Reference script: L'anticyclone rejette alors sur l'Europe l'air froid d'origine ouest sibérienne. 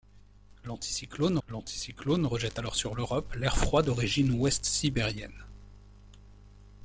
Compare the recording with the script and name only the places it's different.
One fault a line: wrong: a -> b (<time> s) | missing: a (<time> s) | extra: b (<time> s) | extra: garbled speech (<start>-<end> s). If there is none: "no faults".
extra: l'anticyclone (1.5 s)